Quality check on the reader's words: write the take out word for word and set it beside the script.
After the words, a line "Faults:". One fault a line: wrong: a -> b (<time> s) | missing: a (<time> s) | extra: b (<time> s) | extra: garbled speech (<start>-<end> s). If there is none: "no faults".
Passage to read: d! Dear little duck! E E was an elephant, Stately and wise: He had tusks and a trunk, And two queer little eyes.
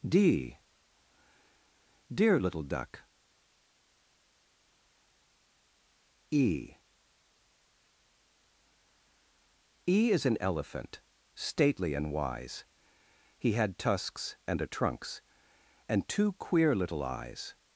d! Dear little duck! E E is an elephant, Stately and wise: He had tusks and a trunks, And two queer little eyes.
Faults:
wrong: was -> is (10.1 s)
wrong: trunk -> trunks (14.7 s)